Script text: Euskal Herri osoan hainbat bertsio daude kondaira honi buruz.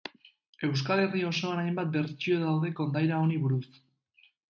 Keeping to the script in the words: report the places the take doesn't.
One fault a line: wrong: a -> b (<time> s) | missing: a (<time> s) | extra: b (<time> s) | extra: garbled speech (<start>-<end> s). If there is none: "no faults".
no faults